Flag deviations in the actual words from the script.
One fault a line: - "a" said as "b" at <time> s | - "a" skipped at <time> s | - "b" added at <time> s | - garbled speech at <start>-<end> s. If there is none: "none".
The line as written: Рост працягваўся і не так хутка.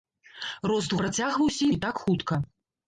none